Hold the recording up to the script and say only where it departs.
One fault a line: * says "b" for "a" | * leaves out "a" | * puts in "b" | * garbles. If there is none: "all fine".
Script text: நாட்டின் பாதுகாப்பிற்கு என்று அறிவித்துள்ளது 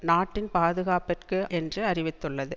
all fine